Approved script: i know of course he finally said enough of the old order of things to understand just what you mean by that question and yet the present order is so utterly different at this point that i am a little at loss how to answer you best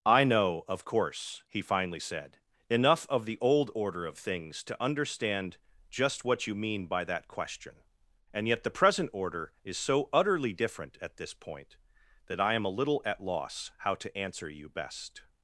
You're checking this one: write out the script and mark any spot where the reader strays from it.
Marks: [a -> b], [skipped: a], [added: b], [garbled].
i know of course he finally said enough of the old order of things to understand just what you mean by that question and yet the present order is so utterly different at this point that i am a little at loss how to answer you best